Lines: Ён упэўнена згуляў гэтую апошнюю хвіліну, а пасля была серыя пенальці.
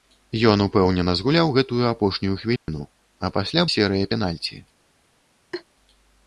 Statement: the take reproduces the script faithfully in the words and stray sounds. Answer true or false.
false